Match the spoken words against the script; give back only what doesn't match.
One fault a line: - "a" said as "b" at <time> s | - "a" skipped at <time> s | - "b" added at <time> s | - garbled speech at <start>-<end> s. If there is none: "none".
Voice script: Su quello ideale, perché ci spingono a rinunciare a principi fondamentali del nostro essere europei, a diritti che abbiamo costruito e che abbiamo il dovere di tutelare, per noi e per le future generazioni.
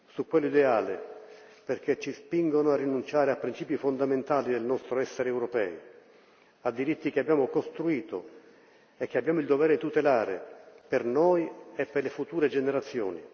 none